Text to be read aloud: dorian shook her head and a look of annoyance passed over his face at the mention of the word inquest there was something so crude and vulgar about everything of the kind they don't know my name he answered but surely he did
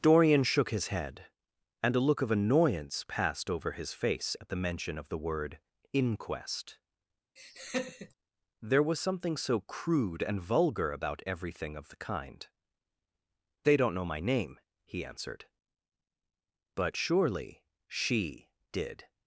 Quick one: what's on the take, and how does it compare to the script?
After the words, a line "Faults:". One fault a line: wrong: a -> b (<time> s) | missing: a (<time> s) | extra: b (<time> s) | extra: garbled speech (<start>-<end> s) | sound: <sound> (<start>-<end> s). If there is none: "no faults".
dorian shook his head and a look of annoyance passed over his face at the mention of the word inquest there was something so crude and vulgar about everything of the kind they don't know my name he answered but surely she did
Faults:
wrong: her -> his (0.7 s)
sound: laugh (7.4-8.1 s)
wrong: he -> she (17.9 s)